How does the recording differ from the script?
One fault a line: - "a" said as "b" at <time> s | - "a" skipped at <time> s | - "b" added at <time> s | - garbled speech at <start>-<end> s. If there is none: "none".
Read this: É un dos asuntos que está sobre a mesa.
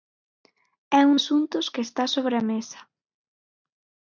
- "dos" skipped at 1.2 s